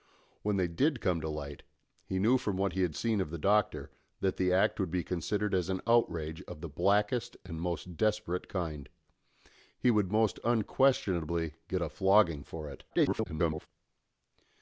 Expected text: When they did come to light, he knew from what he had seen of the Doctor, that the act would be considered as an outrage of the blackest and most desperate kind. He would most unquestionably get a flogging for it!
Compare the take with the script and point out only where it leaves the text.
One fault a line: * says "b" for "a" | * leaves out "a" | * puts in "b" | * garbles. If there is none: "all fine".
* garbles